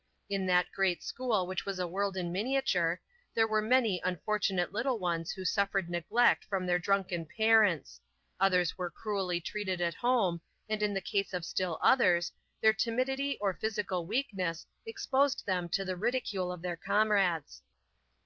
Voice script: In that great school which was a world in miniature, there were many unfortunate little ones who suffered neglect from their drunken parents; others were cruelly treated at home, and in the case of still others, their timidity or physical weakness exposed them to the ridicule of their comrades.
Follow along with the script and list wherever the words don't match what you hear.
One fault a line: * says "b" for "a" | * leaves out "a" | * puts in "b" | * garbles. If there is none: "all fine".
all fine